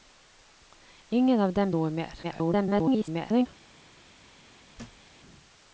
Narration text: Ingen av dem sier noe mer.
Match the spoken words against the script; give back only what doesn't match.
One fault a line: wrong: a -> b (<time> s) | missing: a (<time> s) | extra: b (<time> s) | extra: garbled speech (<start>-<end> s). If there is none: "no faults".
missing: sier (1.7 s)
extra: garbled speech (2.2-3.5 s)